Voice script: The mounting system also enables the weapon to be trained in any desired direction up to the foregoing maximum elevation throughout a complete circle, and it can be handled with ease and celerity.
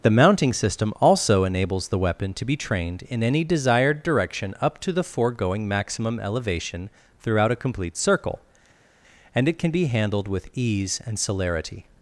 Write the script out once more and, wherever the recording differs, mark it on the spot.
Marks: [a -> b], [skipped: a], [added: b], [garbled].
The mounting system also enables the weapon to be trained in any desired direction up to the foregoing maximum elevation throughout a complete circle, and it can be handled with ease and celerity.